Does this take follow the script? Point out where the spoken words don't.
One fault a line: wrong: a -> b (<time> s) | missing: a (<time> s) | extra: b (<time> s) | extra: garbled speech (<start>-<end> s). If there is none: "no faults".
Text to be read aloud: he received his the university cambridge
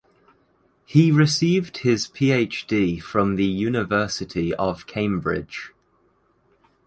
extra: phd from (2.1 s)
extra: of (4.5 s)